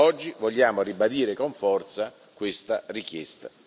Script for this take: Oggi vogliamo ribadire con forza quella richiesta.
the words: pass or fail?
fail